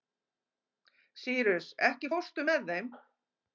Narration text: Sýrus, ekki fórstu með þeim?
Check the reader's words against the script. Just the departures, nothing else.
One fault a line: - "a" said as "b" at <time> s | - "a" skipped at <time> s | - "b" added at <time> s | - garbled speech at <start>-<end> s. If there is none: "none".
none